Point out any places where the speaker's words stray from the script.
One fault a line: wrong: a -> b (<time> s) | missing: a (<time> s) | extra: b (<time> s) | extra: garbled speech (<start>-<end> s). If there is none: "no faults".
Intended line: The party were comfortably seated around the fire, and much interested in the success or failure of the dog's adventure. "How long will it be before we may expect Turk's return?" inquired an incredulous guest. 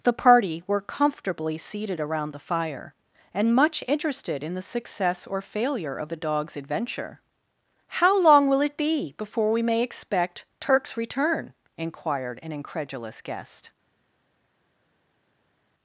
no faults